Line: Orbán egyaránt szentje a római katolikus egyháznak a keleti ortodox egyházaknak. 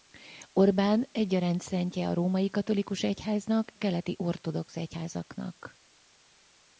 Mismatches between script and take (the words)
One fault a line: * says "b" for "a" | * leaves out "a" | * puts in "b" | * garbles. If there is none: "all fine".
all fine